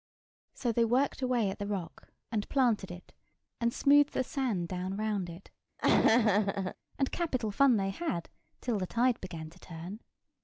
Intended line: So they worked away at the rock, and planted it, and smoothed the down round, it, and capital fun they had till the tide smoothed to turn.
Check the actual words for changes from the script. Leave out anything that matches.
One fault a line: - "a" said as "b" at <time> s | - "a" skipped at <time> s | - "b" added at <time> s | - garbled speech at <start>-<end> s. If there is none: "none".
- "sand" added at 4.2 s
- "smoothed" said as "began" at 9.2 s